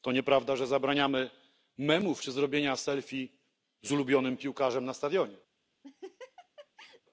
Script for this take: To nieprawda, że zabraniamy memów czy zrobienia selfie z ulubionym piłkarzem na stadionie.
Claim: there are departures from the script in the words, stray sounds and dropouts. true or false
true